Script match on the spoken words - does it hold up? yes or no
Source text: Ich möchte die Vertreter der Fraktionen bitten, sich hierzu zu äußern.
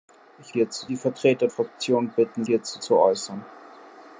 no